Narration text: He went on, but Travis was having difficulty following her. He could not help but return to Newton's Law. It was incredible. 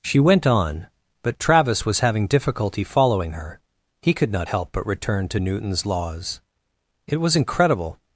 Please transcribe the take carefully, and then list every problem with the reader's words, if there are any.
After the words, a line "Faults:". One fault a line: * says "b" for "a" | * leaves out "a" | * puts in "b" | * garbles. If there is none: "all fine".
She went on, but Travis was having difficulty following her. He could not help but return to Newton's Laws. It was incredible.
Faults:
* says "She" for "He"
* says "Laws" for "Law"